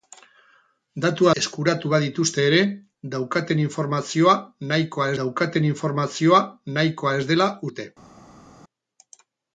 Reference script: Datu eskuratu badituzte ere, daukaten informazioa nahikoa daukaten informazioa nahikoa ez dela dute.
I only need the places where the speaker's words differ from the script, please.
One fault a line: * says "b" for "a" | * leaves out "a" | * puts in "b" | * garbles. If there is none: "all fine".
all fine